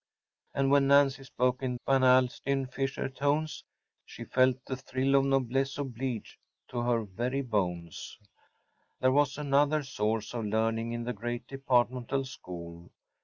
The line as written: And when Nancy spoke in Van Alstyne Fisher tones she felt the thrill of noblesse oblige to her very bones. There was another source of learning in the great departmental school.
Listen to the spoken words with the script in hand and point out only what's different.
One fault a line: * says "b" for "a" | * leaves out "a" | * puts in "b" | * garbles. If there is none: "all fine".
all fine